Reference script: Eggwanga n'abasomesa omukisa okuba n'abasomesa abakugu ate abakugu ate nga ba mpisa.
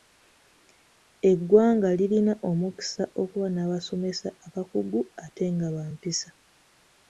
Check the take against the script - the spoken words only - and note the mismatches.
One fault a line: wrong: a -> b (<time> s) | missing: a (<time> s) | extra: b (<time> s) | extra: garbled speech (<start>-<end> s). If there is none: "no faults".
wrong: n'abasomesa -> lirina (2.0 s)
missing: abakugu ate (5.4 s)